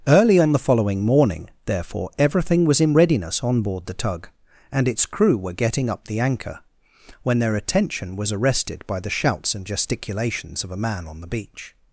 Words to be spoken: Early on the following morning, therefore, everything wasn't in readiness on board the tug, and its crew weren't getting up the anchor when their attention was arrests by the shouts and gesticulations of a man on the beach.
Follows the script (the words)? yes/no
no